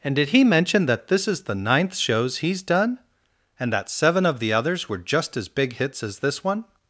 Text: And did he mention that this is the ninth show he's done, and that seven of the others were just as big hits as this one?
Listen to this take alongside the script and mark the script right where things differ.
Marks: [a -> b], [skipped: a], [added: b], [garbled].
And did he mention that this is the ninth [show -> shows] he's done, and that seven of the others were just as big hits as this one?